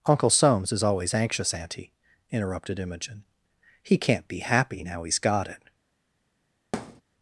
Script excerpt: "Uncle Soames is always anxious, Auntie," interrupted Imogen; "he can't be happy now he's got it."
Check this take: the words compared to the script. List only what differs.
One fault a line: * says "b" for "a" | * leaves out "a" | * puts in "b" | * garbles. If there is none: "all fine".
all fine